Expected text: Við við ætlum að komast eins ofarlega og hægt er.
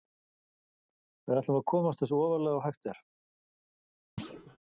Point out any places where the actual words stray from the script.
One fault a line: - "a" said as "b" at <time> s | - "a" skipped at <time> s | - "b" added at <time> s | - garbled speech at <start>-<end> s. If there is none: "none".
- "við" skipped at 1.4 s